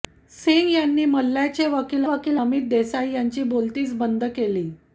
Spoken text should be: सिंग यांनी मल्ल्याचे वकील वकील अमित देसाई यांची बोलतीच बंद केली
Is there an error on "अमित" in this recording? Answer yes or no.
no